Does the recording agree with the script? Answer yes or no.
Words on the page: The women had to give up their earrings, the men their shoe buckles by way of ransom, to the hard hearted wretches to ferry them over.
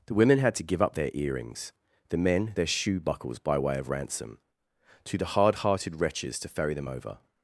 yes